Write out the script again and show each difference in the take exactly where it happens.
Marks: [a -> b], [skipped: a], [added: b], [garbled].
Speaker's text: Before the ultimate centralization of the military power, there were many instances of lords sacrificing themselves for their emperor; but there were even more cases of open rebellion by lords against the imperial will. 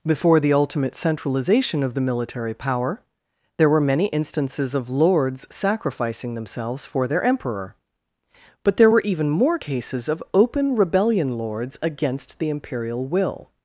Before the ultimate centralization of the military power, there were many instances of lords sacrificing themselves for their emperor; but there were even more cases of open rebellion [skipped: by] lords against the imperial will.